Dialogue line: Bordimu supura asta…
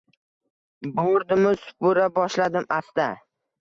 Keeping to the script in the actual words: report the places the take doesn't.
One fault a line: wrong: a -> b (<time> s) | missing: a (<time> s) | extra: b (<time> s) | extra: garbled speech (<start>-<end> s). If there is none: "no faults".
extra: boshladim (2.2 s)